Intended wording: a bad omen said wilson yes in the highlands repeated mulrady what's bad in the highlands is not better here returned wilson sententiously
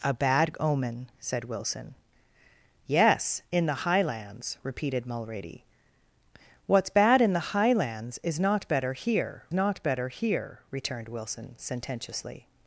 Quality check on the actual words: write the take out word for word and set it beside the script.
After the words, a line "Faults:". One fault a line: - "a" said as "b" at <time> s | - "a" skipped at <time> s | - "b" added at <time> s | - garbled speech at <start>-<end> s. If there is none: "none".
a bad omen said wilson yes in the highlands repeated mulrady what's bad in the highlands is not better here not better here returned wilson sententiously
Faults:
- "not better here" added at 9.5 s